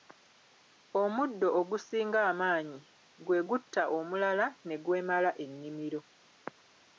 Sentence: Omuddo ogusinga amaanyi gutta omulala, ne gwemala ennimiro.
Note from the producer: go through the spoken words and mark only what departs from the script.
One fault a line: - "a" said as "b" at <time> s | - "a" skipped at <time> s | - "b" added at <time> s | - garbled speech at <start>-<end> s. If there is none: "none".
- "gwe" added at 3.2 s